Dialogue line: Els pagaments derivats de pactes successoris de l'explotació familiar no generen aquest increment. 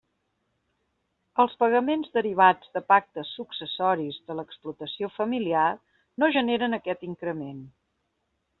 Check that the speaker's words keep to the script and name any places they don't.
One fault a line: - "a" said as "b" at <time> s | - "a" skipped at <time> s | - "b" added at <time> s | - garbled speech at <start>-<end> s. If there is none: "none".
none